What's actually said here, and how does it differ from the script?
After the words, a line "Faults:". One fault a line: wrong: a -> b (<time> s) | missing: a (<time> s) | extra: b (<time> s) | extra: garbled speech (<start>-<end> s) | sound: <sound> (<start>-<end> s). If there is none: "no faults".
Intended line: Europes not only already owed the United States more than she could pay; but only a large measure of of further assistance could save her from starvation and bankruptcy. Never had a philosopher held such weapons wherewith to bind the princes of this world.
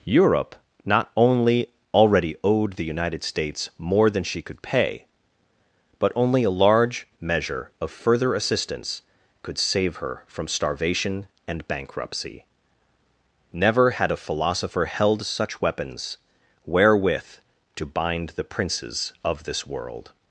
Europe not only already owed the United States more than she could pay; but only a large measure of further assistance could save her from starvation and bankruptcy. Never had a philosopher held such weapons wherewith to bind the princes of this world.
Faults:
wrong: Europes -> Europe (0.0 s)
missing: of (7.9 s)